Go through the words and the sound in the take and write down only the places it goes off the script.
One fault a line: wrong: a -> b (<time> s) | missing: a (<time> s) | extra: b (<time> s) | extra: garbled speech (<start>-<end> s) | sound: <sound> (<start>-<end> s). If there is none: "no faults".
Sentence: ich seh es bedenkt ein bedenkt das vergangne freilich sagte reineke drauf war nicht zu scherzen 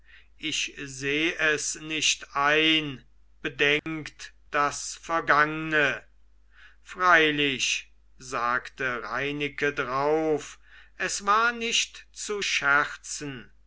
wrong: bedenkt -> nicht (1.8 s)
sound: dropout (3.8-3.9 s)
extra: es (11.0 s)